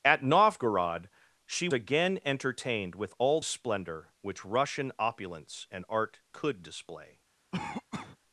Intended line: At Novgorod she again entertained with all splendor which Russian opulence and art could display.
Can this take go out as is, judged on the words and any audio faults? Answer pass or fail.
fail